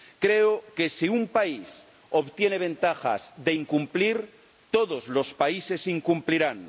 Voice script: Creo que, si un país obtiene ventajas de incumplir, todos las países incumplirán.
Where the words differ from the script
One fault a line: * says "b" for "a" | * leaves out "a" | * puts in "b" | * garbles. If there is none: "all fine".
* says "los" for "las"